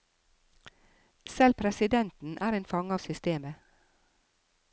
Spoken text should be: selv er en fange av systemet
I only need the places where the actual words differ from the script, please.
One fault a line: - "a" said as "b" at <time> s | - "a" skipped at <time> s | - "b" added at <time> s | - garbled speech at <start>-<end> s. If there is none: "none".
- "presidenten" added at 1.5 s